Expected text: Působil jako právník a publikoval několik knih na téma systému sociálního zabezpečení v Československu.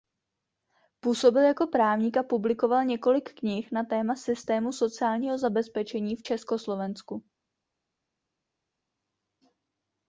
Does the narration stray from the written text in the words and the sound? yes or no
no